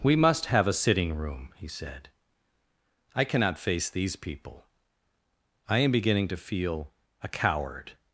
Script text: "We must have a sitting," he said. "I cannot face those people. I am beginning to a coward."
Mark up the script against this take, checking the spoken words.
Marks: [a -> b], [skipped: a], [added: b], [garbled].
"We must have a sitting," [added: room] he said. "I cannot face [those -> these] people. I am beginning to [added: feel] a coward."